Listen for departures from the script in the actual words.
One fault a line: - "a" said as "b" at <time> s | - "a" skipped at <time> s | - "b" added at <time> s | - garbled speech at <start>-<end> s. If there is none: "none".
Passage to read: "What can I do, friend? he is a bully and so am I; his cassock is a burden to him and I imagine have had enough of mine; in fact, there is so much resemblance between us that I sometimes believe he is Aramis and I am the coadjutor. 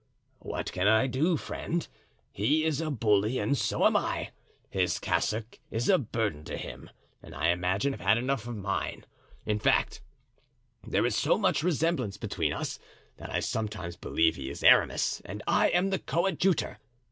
none